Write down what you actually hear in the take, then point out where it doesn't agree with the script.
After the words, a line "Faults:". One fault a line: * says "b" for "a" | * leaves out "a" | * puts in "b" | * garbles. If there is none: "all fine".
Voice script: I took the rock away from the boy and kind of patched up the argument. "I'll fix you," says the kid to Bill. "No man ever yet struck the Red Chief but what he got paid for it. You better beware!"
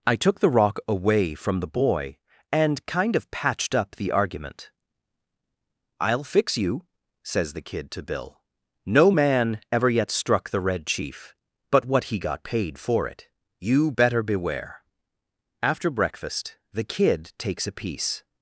I took the rock away from the boy and kind of patched up the argument. "I'll fix you," says the kid to Bill. "No man ever yet struck the Red Chief but what he got paid for it. You better beware!" After breakfast the kid takes a piece
Faults:
* puts in "After breakfast the kid takes a piece"